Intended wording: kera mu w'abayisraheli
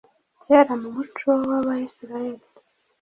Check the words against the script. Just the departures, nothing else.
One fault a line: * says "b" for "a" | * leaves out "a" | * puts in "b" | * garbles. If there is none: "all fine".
* puts in "muco"